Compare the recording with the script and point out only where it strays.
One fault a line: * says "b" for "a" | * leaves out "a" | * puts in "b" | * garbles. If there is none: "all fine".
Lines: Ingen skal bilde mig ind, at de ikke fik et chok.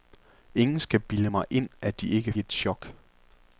* leaves out "fik"